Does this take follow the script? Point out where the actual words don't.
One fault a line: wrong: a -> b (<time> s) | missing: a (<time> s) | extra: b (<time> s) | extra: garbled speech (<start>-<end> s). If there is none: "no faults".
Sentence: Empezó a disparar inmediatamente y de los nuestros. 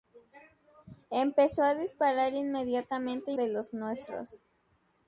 no faults